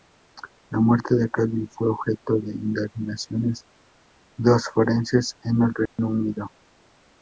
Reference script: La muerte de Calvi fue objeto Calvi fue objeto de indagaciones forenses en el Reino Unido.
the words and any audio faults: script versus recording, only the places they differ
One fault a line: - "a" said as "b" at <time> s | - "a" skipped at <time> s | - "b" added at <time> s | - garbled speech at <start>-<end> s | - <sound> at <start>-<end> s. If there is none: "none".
- "Calvi fue objeto" skipped at 2.4 s
- "dos" added at 4.4 s
- dropout at 5.9-6.0 s